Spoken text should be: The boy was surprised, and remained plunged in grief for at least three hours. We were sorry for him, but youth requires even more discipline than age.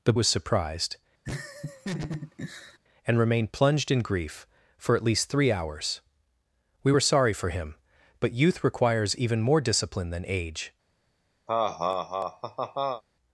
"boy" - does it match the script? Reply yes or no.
no